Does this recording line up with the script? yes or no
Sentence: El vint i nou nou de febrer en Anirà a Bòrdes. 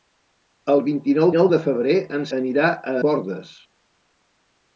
yes